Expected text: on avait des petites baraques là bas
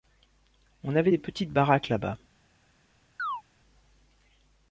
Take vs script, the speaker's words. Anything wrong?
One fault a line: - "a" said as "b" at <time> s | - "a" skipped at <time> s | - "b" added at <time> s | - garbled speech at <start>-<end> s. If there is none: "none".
none